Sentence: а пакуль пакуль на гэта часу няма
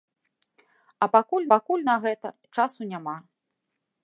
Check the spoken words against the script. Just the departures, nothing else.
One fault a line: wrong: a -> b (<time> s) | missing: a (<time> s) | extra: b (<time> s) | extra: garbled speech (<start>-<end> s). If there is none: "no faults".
no faults